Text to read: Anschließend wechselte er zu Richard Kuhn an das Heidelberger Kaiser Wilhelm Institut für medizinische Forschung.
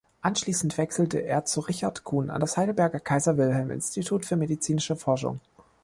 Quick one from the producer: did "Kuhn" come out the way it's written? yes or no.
yes